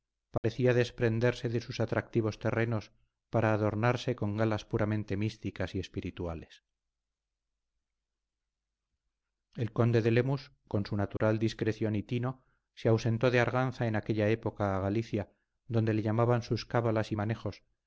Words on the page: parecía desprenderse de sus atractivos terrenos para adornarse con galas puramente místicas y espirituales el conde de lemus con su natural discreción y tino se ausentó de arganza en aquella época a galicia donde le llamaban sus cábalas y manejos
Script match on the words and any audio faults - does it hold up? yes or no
no